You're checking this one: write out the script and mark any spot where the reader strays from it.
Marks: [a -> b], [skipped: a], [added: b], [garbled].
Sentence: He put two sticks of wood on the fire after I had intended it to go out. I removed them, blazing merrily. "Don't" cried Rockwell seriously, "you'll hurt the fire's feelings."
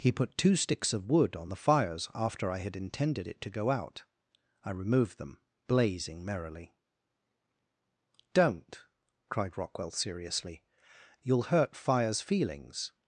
He put two sticks of wood on the [fire -> fires] after I had intended it to go out. I removed them, blazing merrily. "Don't" cried Rockwell seriously, "you'll hurt [skipped: the] fire's feelings."